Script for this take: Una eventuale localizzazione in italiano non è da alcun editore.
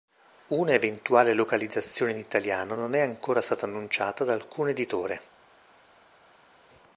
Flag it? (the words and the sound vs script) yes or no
yes